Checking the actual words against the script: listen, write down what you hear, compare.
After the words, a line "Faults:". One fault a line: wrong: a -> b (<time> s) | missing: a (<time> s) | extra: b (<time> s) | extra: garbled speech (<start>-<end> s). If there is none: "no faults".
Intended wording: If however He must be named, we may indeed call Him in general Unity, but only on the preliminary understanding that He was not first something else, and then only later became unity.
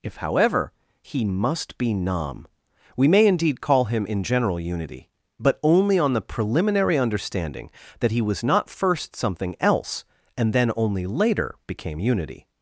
If however He must be nam, we may indeed call Him in general Unity, but only on the preliminary understanding that He was not first something else, and then only later became unity.
Faults:
wrong: named -> nam (1.9 s)